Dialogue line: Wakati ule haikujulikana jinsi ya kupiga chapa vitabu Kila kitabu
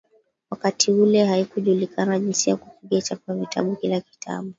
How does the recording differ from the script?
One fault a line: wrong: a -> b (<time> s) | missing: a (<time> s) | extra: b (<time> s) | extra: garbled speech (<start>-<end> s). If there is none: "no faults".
no faults